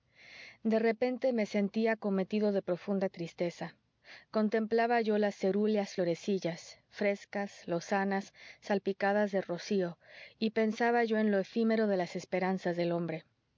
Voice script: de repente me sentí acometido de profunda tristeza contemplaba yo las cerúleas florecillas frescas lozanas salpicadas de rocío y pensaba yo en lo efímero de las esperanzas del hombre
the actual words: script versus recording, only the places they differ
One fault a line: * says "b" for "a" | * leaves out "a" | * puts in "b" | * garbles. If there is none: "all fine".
all fine